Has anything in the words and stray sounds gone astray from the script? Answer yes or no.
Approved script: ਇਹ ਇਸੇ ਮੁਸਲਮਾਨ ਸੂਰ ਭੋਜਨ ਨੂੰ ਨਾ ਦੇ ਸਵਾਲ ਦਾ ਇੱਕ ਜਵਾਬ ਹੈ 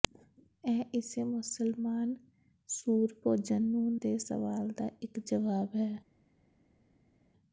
yes